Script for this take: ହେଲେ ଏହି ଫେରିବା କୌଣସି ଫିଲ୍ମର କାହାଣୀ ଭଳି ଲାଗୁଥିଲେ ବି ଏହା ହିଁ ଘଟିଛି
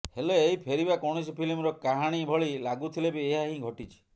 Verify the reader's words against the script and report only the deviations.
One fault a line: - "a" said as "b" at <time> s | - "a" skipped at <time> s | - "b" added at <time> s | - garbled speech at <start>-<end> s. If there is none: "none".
none